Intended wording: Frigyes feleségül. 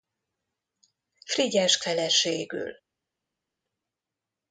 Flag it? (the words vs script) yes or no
no